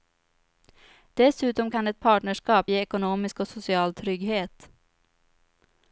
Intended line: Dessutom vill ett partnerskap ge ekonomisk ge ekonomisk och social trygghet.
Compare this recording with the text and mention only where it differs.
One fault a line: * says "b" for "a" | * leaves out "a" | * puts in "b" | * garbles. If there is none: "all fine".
* says "kan" for "vill"
* leaves out "ge ekonomisk"